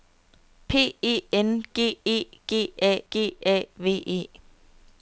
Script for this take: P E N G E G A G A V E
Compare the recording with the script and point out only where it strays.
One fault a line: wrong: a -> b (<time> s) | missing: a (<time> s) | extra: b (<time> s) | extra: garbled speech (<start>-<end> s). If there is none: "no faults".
no faults